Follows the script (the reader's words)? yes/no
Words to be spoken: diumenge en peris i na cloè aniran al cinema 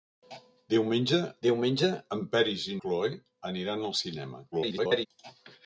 no